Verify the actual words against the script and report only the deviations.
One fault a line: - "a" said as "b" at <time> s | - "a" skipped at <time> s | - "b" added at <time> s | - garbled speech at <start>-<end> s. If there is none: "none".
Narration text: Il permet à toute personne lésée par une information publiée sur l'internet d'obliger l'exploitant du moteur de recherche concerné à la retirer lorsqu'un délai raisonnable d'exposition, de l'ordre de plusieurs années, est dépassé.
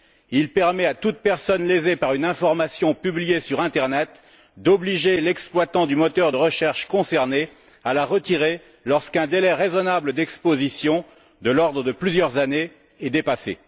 none